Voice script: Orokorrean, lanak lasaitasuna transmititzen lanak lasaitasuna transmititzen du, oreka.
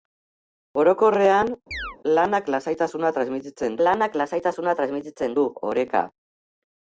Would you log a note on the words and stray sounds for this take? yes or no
yes